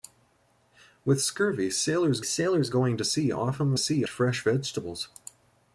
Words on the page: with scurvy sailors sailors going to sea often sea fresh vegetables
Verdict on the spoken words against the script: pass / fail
pass